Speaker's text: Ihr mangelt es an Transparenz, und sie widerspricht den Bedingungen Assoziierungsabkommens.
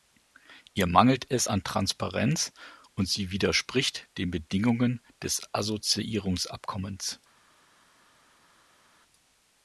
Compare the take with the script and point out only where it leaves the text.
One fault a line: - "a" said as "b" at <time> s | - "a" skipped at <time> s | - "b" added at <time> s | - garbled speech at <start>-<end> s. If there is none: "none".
- "des" added at 5.2 s